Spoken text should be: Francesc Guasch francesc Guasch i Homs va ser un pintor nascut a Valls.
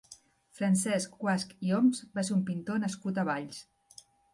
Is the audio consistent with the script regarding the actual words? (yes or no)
no